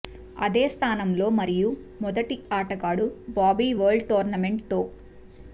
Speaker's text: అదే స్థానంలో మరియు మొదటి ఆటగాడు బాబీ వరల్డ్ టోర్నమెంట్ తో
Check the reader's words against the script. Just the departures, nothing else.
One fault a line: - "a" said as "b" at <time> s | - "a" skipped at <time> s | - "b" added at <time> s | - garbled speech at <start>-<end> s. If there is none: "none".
none